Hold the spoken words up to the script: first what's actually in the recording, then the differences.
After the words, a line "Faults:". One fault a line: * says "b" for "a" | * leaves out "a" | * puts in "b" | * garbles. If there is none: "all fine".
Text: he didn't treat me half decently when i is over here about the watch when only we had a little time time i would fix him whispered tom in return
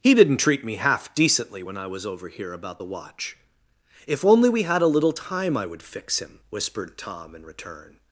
he didn't treat me half decently when i was over here about the watch if only we had a little time i would fix him whispered tom in return
Faults:
* says "was" for "is"
* says "if" for "when"
* leaves out "time"